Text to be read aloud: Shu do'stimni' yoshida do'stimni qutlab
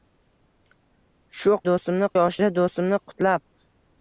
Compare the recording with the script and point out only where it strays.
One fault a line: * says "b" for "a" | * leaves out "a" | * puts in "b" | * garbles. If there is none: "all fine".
all fine